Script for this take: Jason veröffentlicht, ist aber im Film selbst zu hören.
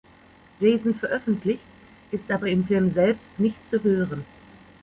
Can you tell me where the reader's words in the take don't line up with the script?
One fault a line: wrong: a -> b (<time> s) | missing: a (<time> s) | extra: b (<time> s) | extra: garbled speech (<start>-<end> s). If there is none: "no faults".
extra: nicht (3.4 s)